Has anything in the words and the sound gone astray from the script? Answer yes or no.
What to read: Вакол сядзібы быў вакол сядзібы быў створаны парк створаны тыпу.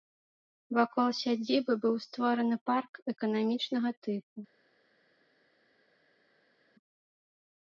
yes